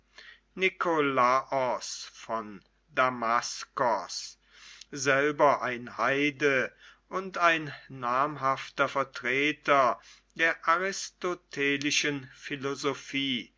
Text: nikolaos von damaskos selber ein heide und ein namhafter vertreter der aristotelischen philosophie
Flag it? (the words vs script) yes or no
no